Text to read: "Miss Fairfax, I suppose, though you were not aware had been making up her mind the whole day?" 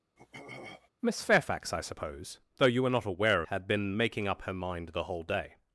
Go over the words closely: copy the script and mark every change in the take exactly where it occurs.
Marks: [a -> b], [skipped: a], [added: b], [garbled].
"Miss Fairfax, I suppose, though you were not aware had been making up her mind the whole day?"